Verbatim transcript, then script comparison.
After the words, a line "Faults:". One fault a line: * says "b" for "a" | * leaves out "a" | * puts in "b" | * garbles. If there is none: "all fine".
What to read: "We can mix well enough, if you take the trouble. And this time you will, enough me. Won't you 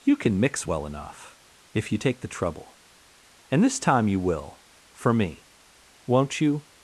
"You can mix well enough, if you take the trouble. And this time you will, for me. Won't you
Faults:
* says "You" for "We"
* says "for" for "enough"